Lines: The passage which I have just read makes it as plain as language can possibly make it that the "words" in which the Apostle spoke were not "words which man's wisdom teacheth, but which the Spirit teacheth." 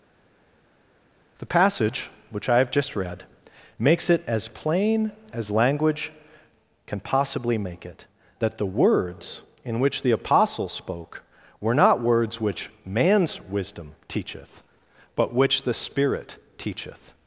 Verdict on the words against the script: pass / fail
pass